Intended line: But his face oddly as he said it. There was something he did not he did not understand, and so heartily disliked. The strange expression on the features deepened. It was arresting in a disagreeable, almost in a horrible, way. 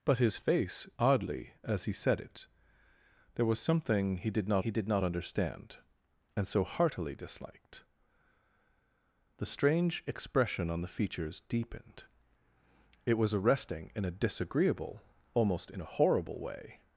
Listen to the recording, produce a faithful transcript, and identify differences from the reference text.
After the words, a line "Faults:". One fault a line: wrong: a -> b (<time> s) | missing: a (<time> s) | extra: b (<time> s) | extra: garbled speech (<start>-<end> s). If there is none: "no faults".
But his face oddly as he said it. There was something he did not he did not understand, and so heartily disliked. The strange expression on the features deepened. It was arresting in a disagreeable, almost in a horrible, way.
Faults:
no faults